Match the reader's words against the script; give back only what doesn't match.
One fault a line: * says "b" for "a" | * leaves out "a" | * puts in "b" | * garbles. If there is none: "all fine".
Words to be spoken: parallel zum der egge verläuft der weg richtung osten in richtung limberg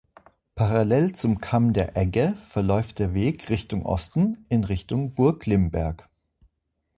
* puts in "kamm"
* puts in "burg"